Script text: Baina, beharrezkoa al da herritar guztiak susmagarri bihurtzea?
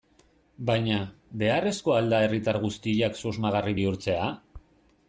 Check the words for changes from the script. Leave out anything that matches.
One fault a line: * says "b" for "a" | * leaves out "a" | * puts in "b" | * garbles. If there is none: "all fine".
all fine